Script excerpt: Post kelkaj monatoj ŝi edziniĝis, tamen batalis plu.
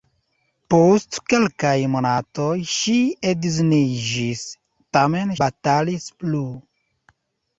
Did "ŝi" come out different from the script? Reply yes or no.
no